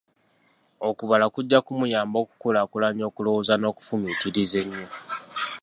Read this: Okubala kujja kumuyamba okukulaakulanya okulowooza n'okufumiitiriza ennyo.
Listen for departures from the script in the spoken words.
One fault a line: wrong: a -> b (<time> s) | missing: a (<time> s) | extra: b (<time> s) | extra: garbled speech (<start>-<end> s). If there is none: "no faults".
no faults